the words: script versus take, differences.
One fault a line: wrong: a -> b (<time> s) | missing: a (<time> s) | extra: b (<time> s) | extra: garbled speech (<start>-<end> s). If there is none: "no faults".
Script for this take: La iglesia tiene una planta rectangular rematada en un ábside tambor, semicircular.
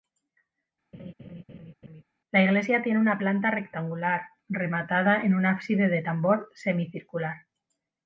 extra: de (5.9 s)